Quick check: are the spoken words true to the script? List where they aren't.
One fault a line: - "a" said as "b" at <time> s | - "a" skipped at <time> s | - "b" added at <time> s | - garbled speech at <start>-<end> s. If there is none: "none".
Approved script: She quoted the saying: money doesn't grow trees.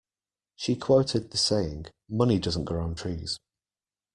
- "on" added at 2.8 s